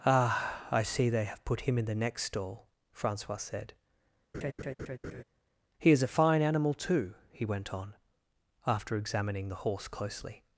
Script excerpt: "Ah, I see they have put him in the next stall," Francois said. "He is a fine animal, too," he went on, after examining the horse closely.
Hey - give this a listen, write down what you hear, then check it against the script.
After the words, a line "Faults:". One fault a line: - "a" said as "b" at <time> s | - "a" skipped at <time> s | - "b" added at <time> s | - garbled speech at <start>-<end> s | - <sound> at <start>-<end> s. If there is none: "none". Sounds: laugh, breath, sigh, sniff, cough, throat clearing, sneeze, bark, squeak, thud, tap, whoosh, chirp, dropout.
"Ah, I see they have put him in the next stall," Francois said. "He is a fine animal, too," he went on, after examining the horse closely.
Faults:
- laugh at 4.3-5.2 s